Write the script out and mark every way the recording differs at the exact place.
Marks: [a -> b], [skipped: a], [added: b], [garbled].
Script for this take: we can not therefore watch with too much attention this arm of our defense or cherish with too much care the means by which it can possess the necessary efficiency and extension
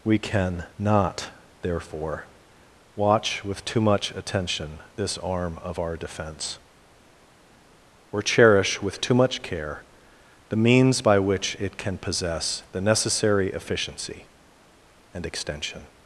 we can not therefore watch with too much attention this arm of our defense or cherish with too much care the means by which it can possess the necessary efficiency and extension